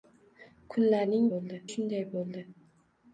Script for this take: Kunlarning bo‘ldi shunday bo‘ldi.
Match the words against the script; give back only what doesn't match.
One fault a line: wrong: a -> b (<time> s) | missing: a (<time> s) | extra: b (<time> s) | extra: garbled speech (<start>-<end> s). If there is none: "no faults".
no faults